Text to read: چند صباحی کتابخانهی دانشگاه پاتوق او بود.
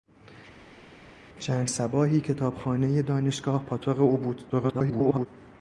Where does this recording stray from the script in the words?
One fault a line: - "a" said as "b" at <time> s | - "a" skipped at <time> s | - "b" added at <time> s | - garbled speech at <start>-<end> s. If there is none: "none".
- garbled speech at 4.5-5.3 s